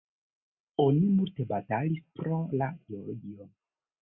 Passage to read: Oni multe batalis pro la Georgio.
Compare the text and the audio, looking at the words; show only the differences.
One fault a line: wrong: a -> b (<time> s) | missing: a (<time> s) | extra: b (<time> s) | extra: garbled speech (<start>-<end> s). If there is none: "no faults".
no faults